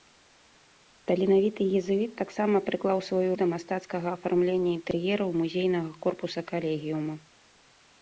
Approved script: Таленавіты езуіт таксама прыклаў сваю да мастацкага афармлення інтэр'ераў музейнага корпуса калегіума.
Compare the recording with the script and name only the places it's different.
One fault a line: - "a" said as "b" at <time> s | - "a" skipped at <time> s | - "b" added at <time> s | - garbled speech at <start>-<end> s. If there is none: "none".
none